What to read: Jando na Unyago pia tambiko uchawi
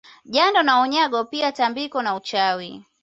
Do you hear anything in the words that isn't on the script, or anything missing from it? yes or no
yes